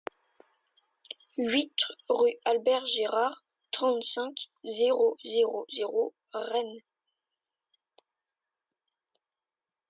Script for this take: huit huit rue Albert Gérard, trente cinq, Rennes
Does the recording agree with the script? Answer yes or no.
no